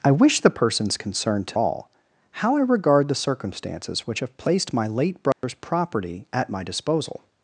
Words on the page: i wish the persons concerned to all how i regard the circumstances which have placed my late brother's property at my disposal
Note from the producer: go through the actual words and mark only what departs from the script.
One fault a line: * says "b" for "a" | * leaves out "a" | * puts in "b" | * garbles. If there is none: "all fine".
all fine